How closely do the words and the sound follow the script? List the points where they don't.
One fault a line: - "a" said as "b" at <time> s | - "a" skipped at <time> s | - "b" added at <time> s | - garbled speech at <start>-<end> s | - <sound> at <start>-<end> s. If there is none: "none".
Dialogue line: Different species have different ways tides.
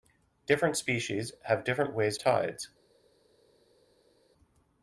none